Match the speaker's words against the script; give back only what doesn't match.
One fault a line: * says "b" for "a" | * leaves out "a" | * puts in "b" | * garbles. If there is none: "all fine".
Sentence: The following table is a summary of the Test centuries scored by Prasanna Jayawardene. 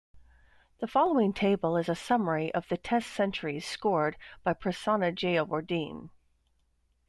all fine